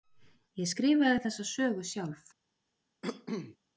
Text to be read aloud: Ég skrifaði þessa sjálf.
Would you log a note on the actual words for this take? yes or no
yes